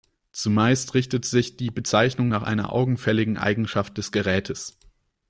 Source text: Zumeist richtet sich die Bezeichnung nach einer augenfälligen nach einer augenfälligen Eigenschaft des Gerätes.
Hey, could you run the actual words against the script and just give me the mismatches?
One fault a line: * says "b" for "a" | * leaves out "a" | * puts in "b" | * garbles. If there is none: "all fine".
* leaves out "nach einer augenfälligen"